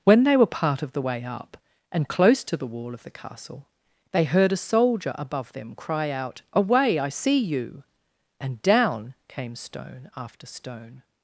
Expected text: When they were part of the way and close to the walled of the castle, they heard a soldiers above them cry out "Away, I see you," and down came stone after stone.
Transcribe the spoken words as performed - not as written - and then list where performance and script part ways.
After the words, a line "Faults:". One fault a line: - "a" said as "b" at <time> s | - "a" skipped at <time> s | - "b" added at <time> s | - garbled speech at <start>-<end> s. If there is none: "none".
When they were part of the way up, and close to the wall of the castle, they heard a soldier above them cry out "Away, I see you," and down came stone after stone.
Faults:
- "up" added at 1.2 s
- "walled" said as "wall" at 2.7 s
- "soldiers" said as "soldier" at 4.6 s